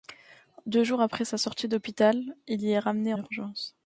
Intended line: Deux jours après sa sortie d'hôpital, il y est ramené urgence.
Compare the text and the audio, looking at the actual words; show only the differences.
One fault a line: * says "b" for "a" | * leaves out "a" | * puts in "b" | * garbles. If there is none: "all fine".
all fine